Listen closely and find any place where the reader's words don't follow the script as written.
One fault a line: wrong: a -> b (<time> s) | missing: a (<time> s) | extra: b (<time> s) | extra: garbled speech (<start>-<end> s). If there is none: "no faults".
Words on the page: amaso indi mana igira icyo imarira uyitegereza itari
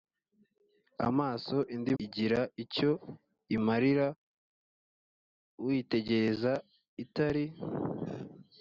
missing: mana (1.9 s)